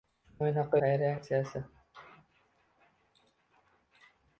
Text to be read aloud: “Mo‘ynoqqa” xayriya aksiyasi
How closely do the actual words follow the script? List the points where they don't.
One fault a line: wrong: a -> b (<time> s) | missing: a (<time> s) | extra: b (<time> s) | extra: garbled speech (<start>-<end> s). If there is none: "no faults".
no faults